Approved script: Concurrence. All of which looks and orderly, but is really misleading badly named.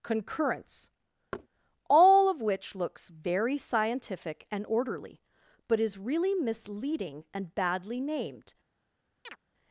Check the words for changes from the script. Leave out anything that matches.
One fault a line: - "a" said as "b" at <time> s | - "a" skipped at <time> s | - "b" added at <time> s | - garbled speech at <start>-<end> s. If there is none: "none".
- "very scientific" added at 3.1 s
- "and" added at 7.3 s